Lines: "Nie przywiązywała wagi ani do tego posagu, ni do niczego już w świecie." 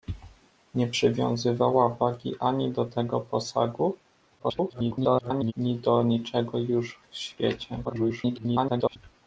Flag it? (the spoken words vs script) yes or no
yes